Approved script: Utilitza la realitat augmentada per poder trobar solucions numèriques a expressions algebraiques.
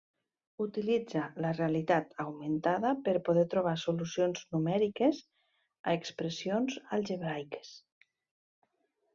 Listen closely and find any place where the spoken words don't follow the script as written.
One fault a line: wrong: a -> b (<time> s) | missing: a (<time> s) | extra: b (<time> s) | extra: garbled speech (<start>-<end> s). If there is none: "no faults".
no faults